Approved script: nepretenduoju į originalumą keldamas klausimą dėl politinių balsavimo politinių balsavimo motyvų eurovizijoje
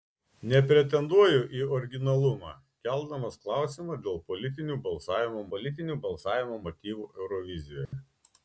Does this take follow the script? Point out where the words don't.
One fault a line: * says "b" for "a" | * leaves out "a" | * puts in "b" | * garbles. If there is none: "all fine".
all fine